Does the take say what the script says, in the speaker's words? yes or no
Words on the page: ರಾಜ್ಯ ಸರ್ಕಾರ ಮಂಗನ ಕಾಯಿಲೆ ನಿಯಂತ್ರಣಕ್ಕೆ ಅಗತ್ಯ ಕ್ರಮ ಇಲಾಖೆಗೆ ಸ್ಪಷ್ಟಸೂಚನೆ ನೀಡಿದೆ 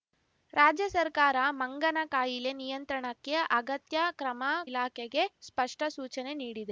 yes